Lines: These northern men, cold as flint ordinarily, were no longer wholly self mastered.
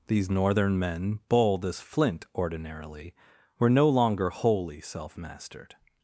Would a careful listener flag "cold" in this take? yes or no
yes